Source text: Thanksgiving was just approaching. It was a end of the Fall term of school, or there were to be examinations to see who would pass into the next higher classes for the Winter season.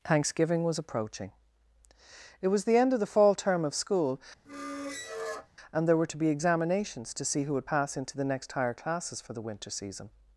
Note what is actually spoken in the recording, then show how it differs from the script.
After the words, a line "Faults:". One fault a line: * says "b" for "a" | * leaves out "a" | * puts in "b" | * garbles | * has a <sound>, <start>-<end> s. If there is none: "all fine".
Thanksgiving was approaching. It was the end of the Fall term of school, and there were to be examinations to see who would pass into the next higher classes for the Winter season.
Faults:
* leaves out "just"
* says "the" for "a"
* has a squeak, 4.5-5.5 s
* says "and" for "or"